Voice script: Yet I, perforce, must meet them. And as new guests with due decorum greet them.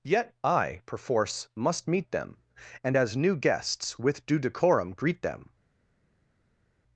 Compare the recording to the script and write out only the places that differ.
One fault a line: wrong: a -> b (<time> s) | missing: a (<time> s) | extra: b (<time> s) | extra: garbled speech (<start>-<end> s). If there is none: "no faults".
no faults